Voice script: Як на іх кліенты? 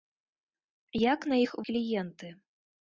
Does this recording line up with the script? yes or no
yes